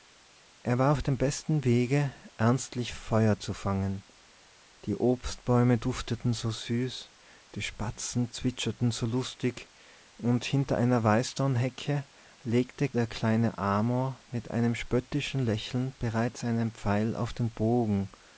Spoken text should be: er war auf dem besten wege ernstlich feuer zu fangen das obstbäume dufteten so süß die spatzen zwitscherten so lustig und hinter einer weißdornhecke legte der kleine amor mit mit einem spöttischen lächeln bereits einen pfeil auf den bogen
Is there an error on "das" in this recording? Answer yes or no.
yes